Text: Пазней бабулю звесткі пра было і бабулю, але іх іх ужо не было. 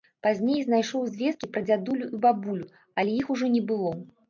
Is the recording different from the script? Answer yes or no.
yes